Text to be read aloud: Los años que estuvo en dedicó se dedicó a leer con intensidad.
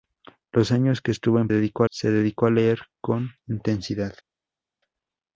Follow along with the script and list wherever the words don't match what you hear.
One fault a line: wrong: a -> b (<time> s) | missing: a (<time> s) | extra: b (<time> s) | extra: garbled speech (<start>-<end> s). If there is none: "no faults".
no faults